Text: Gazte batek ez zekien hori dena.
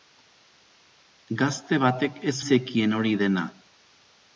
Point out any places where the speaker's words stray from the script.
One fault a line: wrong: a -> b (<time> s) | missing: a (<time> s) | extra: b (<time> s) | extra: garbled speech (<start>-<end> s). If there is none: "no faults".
no faults